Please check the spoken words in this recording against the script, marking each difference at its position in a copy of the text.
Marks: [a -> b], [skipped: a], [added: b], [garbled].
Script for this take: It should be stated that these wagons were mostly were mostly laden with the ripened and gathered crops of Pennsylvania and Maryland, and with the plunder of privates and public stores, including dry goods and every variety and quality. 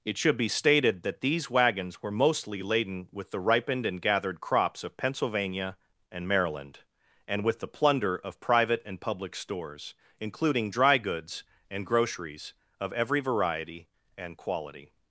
It should be stated that these wagons were mostly [skipped: were mostly] laden with the ripened and gathered crops of Pennsylvania and Maryland, and with the plunder of [privates -> private] and public stores, including dry goods and [added: groceries of] every variety and quality.